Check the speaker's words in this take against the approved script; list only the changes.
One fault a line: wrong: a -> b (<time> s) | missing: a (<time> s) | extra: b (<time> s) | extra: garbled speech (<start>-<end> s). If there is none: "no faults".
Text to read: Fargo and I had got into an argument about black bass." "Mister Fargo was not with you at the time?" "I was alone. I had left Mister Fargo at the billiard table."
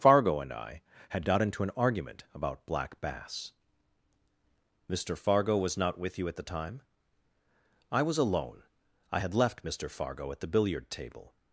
no faults